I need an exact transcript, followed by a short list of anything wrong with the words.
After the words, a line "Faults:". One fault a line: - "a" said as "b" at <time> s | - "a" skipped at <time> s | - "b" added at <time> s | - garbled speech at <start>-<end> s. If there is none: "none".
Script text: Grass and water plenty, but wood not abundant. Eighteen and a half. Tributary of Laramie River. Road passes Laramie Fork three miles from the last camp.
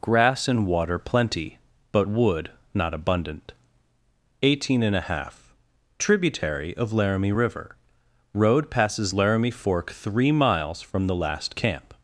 Grass and water plenty, but wood not abundant. Eighteen and a half. Tributary of Laramie River. Road passes Laramie Fork three miles from the last camp.
Faults:
none